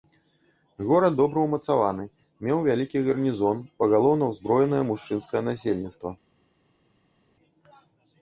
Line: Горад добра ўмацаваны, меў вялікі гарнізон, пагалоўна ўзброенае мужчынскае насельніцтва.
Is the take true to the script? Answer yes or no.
yes